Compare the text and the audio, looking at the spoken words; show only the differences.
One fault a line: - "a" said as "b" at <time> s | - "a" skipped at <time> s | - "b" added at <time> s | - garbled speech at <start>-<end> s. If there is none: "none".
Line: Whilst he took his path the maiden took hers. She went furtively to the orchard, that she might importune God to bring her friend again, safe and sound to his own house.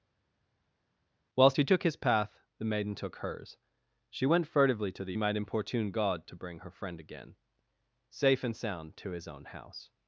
- "orchard that she" skipped at 5.2 s